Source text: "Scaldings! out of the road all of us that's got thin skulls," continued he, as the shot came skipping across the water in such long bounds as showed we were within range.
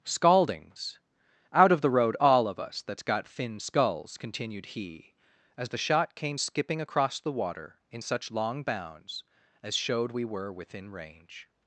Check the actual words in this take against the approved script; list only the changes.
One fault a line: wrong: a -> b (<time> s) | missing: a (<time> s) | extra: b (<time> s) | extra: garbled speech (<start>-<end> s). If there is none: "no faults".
no faults